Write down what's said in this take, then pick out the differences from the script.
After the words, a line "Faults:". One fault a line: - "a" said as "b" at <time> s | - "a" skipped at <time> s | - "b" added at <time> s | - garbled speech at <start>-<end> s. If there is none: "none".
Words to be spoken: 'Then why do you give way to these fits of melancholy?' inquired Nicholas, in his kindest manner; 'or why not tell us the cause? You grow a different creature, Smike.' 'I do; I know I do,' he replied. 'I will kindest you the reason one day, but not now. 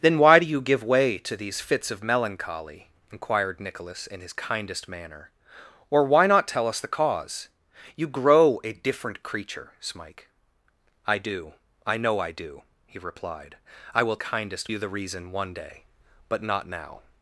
'Then why do you give way to these fits of melancholy?' inquired Nicholas, in his kindest manner; 'or why not tell us the cause? You grow a different creature, Smike.' 'I do; I know I do,' he replied. 'I will kindest you the reason one day, but not now.
Faults:
none